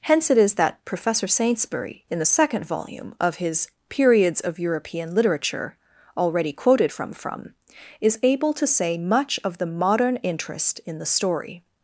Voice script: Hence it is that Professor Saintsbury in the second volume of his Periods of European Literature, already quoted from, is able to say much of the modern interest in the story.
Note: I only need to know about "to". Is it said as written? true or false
true